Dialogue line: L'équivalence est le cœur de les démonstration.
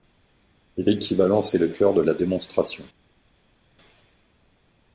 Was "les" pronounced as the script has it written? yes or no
no